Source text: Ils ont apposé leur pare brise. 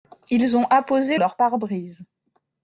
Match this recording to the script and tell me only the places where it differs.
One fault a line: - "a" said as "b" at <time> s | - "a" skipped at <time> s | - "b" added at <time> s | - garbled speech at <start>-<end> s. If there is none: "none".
none